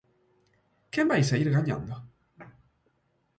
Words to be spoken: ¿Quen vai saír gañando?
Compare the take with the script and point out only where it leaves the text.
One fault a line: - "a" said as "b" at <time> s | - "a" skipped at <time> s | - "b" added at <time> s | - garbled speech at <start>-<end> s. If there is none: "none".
none